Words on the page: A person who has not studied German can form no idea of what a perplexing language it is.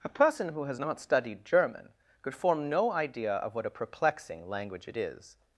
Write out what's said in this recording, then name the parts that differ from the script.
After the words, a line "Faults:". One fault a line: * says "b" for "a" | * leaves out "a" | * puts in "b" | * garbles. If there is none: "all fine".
A person who has not studied German could form no idea of what a perplexing language it is.
Faults:
* says "could" for "can"